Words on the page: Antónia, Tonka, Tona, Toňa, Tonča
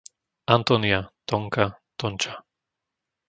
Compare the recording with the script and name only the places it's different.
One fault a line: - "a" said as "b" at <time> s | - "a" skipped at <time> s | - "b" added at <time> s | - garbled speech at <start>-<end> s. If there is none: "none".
- "Tona Toňa" skipped at 1.8 s